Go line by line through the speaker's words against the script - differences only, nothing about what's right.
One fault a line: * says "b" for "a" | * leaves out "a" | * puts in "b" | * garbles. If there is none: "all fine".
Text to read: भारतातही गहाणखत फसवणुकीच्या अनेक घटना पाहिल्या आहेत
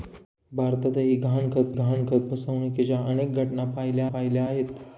* puts in "गहाणखत"
* puts in "पाहिल्या"